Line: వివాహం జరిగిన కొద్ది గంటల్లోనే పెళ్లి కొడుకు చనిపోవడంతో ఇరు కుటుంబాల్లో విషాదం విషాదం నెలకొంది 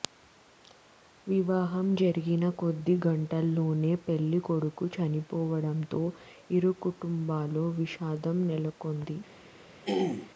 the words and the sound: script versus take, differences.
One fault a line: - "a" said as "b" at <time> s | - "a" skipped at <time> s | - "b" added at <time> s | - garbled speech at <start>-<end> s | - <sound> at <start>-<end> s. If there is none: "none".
- "విషాదం" skipped at 8.4 s
- throat clearing at 9.8-10.3 s